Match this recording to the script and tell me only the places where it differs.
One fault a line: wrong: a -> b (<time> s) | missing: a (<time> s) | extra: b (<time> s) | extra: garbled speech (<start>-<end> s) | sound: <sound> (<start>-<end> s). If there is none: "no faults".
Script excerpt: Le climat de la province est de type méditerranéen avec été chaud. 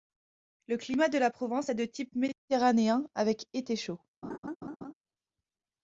sound: laugh (4.2-4.9 s)